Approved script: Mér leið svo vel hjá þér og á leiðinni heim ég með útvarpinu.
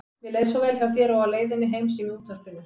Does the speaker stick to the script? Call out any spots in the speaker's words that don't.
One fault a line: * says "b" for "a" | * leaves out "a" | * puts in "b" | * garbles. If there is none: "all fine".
all fine